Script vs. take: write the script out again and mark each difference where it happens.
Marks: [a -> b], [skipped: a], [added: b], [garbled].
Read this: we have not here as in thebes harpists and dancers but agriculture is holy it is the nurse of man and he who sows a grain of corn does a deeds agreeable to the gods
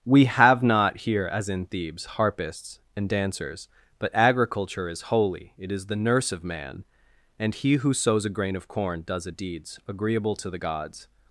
we have not here as in thebes harpists and dancers but agriculture is holy it is the nurse of man and he who sows a grain of corn does a deeds agreeable to the gods